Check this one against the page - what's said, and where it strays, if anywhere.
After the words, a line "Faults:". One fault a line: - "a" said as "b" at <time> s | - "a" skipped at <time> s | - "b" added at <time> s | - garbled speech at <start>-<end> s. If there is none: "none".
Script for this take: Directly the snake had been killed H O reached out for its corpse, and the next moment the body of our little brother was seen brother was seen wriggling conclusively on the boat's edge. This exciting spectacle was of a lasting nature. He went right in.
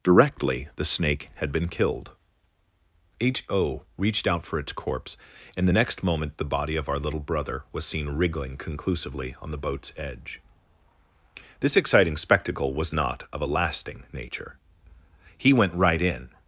Directly the snake had been killed H O reached out for its corpse, and the next moment the body of our little brother was seen wriggling conclusively on the boat's edge. This exciting spectacle was not of a lasting nature. He went right in.
Faults:
- "brother was seen" skipped at 8.1 s
- "not" added at 12.9 s